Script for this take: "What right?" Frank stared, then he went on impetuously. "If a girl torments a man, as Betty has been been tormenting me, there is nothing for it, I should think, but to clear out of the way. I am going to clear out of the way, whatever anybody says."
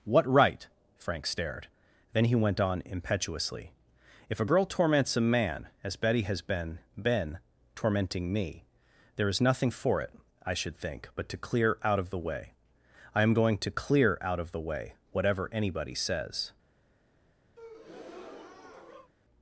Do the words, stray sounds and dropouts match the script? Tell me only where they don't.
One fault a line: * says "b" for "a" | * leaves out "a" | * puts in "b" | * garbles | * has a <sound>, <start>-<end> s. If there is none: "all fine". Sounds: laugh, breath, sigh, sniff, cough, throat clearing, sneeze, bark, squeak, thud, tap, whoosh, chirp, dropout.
* has a breath, 17.6-19.1 s